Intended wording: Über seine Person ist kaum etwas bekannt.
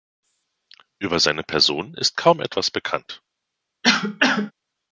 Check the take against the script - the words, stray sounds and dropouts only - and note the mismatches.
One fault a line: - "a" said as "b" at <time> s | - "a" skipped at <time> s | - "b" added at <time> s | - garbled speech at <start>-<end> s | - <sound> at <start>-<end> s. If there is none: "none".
- cough at 3.8-4.5 s